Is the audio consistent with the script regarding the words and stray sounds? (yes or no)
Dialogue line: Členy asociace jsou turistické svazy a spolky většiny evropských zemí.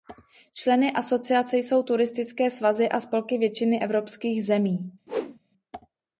no